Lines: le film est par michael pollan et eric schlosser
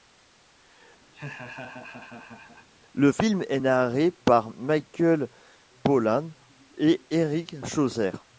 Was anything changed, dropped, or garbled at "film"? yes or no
no